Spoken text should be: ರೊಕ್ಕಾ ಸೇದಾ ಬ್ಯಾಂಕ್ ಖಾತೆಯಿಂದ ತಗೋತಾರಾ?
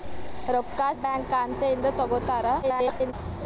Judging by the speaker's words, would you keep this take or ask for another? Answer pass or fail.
fail